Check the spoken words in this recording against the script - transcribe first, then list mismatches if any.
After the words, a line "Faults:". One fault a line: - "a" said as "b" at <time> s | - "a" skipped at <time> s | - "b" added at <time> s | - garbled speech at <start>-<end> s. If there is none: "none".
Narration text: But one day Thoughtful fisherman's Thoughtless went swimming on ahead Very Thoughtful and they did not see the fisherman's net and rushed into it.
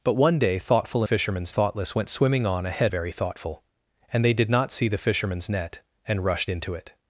But one day Thoughtful fisherman's Thoughtless went swimming on ahead Very Thoughtful and they did not see the fisherman's net and rushed into it.
Faults:
none